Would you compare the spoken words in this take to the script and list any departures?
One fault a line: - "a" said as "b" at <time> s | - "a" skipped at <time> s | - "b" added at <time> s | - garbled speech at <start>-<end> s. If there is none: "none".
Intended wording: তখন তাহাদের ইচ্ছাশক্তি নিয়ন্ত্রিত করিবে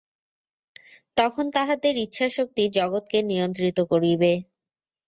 - "জগৎকে" added at 2.8 s